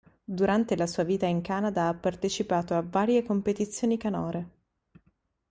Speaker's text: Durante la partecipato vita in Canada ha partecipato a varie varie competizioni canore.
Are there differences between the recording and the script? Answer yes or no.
yes